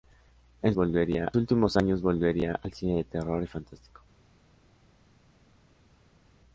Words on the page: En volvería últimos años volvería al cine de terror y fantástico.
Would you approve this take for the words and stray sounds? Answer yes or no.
yes